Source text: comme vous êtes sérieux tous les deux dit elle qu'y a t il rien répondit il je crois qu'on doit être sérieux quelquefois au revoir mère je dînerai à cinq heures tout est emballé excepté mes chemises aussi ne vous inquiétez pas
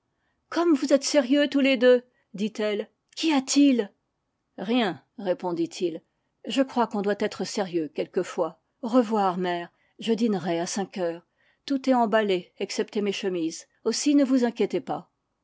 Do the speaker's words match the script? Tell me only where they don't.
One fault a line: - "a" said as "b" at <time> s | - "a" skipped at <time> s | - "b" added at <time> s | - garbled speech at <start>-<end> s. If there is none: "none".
none